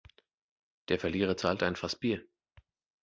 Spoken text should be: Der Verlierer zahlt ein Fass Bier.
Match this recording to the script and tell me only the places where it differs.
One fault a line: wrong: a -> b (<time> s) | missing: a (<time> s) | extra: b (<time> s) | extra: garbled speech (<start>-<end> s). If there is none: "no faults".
no faults